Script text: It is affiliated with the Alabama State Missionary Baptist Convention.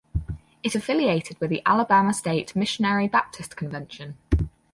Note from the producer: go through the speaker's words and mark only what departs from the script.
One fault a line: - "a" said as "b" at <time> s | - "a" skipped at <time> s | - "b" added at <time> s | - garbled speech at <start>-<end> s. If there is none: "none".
- "is" skipped at 0.8 s